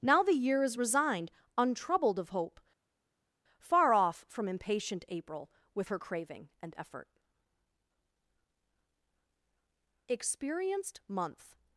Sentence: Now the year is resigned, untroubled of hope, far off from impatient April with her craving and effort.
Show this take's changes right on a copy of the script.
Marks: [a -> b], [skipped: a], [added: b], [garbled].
Now the year is resigned, untroubled of hope, far off from impatient April with her craving and effort. [added: Experienced month]